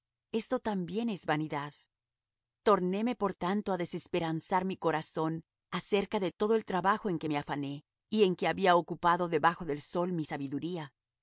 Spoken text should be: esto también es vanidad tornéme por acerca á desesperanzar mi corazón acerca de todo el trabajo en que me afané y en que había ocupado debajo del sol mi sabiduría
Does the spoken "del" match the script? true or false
true